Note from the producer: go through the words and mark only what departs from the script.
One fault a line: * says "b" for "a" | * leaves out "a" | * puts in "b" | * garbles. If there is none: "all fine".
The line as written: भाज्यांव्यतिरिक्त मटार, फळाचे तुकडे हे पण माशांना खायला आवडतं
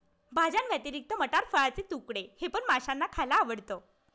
all fine